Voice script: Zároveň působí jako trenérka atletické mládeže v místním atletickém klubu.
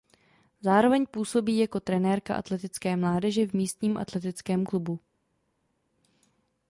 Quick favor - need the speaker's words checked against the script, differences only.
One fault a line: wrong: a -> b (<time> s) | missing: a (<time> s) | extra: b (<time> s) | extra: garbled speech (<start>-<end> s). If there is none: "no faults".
no faults